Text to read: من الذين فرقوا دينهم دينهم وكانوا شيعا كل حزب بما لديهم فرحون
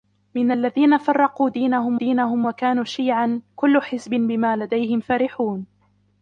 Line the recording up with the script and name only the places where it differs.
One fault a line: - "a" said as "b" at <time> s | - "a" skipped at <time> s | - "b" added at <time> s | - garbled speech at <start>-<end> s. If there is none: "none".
none